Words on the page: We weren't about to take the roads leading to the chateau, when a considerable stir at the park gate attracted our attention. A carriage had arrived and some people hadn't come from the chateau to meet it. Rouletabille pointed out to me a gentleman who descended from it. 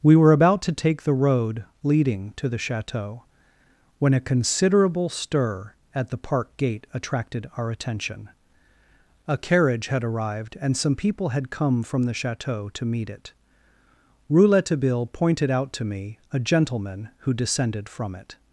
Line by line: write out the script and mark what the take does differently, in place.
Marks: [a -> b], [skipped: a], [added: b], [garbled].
We [weren't -> were] about to take the [roads -> road] leading to the chateau, when a considerable stir at the park gate attracted our attention. A carriage had arrived and some people [hadn't -> had] come from the chateau to meet it. Rouletabille pointed out to me a gentleman who descended from it.